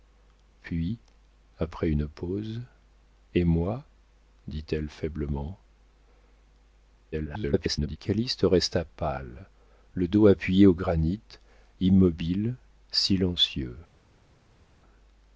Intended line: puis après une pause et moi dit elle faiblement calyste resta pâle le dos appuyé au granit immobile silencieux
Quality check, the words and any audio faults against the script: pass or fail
fail